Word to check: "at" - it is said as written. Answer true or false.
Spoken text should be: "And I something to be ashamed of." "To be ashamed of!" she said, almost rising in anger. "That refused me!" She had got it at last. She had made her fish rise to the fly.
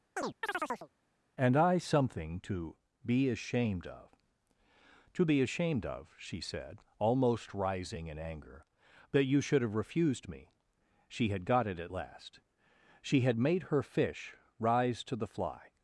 true